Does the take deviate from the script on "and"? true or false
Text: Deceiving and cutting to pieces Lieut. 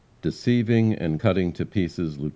false